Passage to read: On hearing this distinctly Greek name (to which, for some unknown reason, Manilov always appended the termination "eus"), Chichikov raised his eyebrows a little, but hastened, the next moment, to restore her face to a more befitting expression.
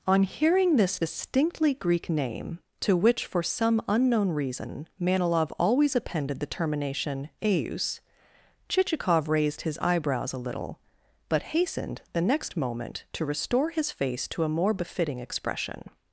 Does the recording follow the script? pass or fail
fail